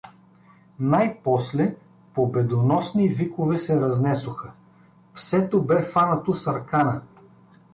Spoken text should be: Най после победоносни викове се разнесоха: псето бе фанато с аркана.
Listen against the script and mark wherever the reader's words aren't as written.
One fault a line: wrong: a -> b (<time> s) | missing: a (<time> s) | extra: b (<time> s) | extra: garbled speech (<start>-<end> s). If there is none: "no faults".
no faults